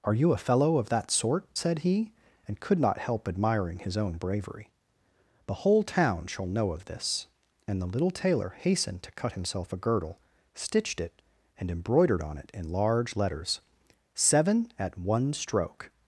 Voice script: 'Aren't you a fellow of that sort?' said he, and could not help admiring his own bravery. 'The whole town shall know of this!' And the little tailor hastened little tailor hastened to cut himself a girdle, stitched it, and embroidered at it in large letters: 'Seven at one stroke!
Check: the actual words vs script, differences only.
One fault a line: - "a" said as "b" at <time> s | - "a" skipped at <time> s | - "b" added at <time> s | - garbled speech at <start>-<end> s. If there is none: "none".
- "Aren't" said as "Are" at 0.0 s
- "little tailor hastened" skipped at 9.0 s
- "at" said as "on" at 12.2 s